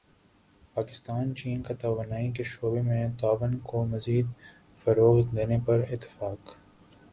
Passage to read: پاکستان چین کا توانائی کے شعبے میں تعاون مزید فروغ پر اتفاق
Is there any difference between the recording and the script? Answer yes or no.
yes